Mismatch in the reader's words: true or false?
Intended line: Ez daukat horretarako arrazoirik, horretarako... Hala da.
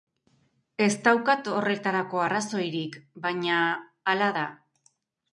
true